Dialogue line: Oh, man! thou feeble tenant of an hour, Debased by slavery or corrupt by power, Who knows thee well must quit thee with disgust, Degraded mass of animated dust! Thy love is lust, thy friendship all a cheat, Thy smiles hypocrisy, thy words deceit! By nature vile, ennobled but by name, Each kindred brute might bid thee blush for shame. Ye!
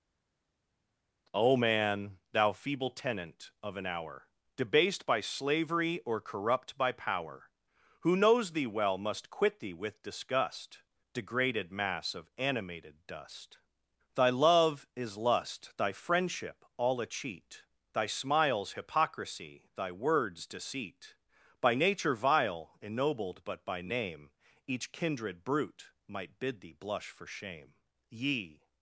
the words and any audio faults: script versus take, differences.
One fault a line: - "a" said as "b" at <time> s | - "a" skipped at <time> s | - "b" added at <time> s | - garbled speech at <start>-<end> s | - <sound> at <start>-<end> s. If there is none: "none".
none